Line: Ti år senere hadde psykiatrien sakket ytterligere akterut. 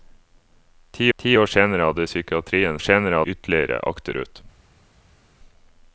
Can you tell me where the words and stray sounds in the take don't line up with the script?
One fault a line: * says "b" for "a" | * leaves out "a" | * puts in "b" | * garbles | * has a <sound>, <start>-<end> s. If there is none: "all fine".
* puts in "ti"
* says "senere" for "sakket"